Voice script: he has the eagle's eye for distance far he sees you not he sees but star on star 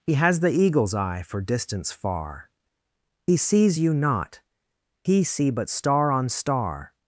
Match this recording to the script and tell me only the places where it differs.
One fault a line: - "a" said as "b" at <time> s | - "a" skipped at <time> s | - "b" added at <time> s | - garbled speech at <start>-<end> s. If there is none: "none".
- "sees" said as "see" at 5.2 s